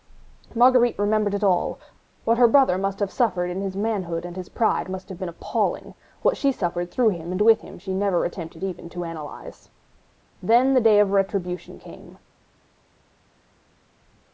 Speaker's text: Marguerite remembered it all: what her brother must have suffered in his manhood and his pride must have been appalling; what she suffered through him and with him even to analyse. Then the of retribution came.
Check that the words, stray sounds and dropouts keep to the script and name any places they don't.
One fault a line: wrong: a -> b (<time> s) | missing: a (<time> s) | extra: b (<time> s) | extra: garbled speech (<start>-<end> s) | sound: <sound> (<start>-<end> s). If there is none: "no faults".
extra: she never attempted (7.8 s)
extra: day (10.8 s)